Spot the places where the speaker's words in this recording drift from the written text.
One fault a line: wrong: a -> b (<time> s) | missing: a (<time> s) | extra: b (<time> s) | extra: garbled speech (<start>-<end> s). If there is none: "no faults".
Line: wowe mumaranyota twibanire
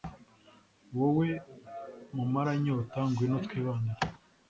extra: ngwino (3.1 s)